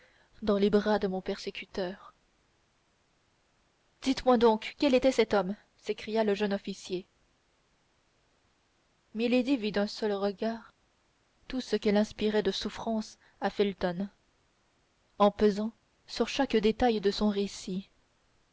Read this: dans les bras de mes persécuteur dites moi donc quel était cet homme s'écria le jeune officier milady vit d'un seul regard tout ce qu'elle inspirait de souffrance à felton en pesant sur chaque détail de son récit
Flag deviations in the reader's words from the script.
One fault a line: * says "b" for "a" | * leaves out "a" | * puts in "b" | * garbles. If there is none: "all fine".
* says "mon" for "mes"